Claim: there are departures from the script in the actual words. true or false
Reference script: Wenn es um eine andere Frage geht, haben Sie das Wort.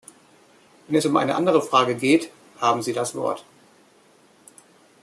false